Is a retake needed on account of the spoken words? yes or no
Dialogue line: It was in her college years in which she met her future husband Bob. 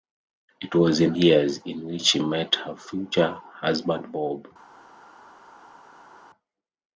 yes